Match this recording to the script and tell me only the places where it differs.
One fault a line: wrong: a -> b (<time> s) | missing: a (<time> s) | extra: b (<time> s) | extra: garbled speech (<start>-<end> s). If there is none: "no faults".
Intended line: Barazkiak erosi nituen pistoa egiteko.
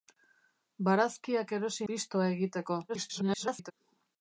missing: nituen (1.9 s)
extra: garbled speech (2.9-3.7 s)